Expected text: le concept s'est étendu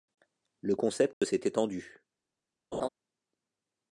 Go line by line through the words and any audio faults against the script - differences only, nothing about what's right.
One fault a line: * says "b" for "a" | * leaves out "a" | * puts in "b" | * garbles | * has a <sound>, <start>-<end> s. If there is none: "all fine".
* has a dropout, 1.1-1.2 s
* has a laugh, 2.7-2.9 s